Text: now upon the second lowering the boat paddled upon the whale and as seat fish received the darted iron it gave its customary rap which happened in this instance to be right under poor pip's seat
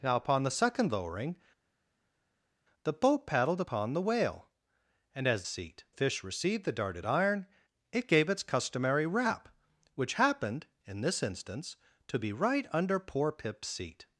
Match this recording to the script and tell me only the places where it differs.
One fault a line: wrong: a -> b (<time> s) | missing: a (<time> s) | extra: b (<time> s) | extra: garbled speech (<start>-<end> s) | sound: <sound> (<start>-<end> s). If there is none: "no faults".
no faults